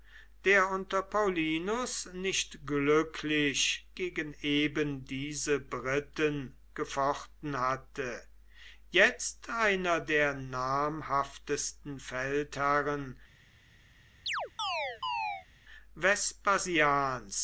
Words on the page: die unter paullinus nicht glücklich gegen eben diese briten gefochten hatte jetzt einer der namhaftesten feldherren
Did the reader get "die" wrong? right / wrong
wrong